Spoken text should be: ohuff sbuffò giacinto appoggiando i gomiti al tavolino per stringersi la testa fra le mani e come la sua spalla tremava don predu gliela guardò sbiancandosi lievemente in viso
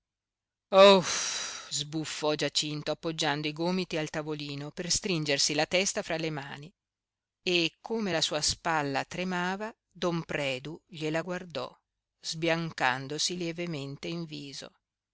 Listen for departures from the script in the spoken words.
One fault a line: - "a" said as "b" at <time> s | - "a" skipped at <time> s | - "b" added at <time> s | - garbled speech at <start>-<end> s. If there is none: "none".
none